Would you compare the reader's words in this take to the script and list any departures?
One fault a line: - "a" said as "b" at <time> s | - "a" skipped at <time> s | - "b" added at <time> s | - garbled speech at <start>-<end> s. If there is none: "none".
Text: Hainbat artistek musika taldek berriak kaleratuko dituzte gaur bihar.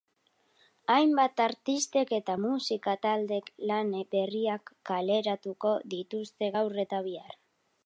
- "eta" added at 2.2 s
- "lan" added at 3.7 s
- "eta" added at 6.9 s